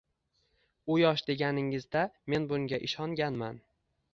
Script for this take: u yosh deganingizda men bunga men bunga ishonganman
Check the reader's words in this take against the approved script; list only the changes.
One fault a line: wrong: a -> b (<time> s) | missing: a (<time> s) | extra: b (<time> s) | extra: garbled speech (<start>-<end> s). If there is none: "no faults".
missing: men bunga (2.8 s)